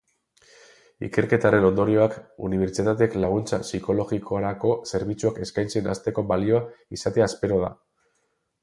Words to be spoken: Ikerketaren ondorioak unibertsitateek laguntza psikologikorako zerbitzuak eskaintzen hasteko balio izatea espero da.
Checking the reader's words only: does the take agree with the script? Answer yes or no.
yes